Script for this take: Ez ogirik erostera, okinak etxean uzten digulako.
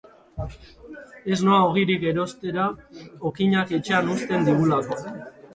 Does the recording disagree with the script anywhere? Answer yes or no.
yes